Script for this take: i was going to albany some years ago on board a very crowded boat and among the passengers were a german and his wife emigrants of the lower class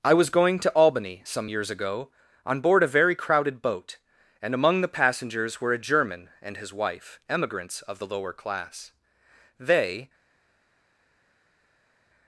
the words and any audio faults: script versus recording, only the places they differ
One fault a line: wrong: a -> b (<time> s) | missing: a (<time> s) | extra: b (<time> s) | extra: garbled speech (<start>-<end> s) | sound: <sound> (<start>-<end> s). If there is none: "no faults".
extra: they (9.6 s)